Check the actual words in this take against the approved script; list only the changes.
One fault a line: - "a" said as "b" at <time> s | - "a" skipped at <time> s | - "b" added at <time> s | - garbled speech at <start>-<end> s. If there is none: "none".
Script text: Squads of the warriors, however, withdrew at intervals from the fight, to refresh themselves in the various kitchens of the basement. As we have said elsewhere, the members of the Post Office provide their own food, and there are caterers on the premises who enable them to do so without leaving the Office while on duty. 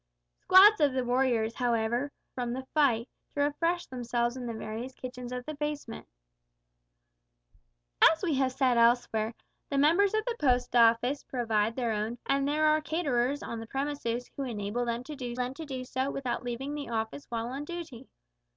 - "withdrew at intervals" skipped at 2.1 s
- "food" skipped at 12.2 s
- "them to do" added at 15.4 s